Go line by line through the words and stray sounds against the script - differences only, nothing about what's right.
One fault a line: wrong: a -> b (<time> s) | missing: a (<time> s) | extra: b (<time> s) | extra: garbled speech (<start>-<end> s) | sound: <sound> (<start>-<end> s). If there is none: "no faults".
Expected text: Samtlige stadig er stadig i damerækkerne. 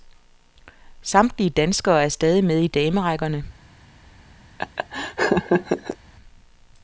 wrong: stadig -> danskere (1.5 s)
extra: med (2.4 s)
sound: laugh (4.6-6.0 s)